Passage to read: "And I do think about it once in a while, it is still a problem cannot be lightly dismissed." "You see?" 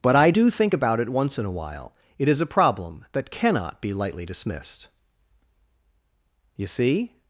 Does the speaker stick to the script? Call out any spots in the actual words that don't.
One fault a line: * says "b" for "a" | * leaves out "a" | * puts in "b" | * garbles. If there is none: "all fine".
* says "But" for "And"
* leaves out "still"
* puts in "that"